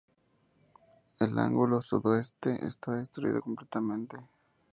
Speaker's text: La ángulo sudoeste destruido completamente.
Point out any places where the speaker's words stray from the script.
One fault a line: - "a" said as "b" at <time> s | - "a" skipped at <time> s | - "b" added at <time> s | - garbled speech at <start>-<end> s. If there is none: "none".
- "La" said as "El" at 1.2 s
- "está" added at 2.7 s